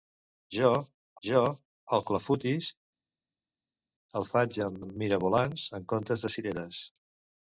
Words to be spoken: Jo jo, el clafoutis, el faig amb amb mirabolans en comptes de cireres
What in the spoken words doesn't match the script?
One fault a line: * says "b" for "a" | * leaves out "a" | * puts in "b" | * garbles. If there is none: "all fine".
all fine